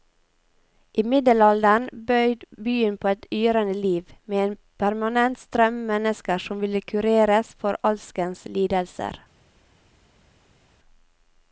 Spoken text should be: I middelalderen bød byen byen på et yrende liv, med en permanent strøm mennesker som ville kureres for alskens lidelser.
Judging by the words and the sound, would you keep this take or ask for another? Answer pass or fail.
fail